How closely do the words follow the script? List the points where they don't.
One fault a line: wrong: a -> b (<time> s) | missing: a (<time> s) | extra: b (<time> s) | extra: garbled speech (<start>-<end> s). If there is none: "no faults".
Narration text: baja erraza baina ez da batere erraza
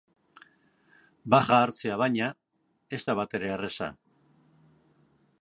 wrong: erraza -> hartzea (1.6 s)